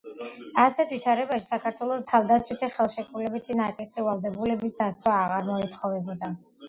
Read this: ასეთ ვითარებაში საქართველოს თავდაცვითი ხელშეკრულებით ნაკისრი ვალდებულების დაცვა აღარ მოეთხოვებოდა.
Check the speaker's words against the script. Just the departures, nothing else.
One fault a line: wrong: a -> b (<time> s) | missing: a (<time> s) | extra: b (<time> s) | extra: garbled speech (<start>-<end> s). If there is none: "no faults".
no faults